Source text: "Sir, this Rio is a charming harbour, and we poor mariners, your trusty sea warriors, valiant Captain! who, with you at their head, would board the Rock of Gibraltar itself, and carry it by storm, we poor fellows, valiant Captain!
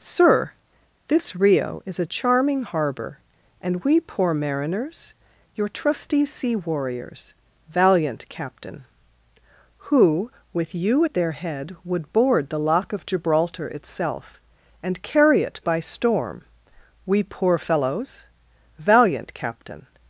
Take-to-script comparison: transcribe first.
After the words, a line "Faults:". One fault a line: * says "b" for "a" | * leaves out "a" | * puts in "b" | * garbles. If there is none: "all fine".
"Sir, this Rio is a charming harbour, and we poor mariners, your trusty sea warriors, valiant Captain! who, with you at their head, would board the Lock of Gibraltar itself, and carry it by storm, we poor fellows, valiant Captain!
Faults:
* says "Lock" for "Rock"